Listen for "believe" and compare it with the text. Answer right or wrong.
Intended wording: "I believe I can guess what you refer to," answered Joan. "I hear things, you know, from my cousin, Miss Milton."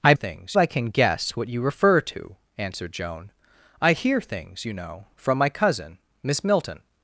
wrong